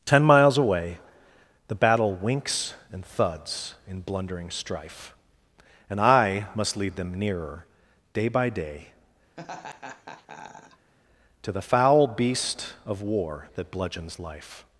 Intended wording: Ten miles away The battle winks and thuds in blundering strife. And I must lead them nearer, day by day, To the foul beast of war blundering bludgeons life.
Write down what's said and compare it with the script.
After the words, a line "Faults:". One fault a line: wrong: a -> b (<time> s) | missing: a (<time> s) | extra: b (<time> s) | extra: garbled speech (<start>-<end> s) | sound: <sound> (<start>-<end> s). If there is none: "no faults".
Ten miles away The battle winks and thuds in blundering strife. And I must lead them nearer, day by day, To the foul beast of war that bludgeons life.
Faults:
sound: laugh (9.4-10.9 s)
wrong: blundering -> that (13.5 s)